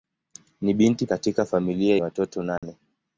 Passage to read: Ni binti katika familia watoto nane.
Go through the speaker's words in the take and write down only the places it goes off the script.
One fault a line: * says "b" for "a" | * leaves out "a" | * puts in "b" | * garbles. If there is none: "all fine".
all fine